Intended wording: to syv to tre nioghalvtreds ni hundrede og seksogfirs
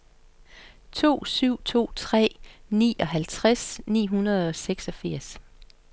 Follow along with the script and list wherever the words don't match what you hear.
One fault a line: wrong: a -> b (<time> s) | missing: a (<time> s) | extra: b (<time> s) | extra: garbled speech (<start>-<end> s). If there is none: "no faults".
no faults